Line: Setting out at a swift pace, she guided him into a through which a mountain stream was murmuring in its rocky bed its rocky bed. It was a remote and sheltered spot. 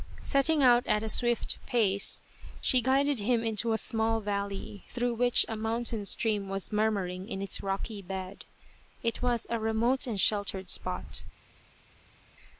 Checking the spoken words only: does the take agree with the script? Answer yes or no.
no